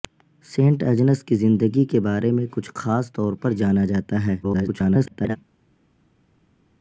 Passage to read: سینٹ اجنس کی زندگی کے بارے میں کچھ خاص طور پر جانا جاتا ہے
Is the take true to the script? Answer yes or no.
no